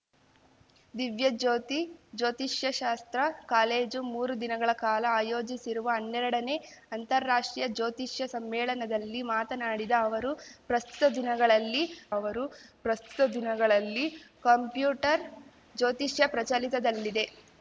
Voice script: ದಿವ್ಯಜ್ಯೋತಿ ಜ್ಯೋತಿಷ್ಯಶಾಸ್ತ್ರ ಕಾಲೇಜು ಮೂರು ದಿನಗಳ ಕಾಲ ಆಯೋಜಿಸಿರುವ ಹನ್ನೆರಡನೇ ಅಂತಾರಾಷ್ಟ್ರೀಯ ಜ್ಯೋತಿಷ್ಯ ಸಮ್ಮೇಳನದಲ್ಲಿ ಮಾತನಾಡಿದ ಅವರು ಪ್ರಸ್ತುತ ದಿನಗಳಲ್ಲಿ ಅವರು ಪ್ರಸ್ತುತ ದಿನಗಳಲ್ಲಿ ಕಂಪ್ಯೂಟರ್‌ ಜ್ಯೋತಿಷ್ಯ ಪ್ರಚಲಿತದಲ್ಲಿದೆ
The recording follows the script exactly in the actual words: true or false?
true